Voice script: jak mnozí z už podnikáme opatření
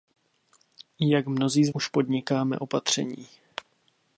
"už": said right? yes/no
yes